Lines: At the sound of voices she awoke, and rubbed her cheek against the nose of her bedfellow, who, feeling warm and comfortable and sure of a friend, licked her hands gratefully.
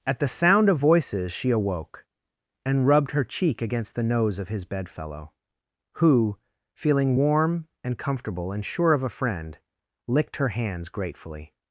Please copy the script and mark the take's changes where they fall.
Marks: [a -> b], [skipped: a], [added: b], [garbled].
At the sound of voices she awoke, and rubbed her cheek against the nose of [her -> his] bedfellow, who, feeling warm and comfortable and sure of a friend, licked her hands gratefully.